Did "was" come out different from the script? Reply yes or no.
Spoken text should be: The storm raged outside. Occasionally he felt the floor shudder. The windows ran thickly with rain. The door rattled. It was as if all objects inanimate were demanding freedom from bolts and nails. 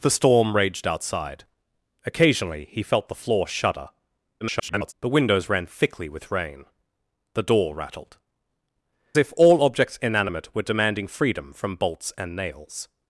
yes